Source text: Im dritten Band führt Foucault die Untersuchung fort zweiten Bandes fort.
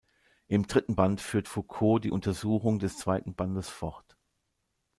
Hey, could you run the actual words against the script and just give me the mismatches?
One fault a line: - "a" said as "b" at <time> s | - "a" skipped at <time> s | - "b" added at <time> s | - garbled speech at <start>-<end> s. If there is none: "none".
- "fort" said as "des" at 2.8 s